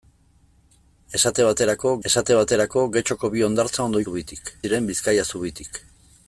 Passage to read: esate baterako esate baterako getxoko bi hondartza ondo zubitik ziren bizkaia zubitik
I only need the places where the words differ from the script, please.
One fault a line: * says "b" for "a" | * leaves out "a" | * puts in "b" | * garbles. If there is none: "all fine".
all fine